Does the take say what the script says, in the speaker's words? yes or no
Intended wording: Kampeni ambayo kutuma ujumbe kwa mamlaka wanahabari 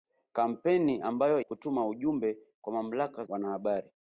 yes